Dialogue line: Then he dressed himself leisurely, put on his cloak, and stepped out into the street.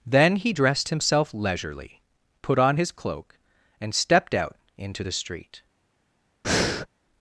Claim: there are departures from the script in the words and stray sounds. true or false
true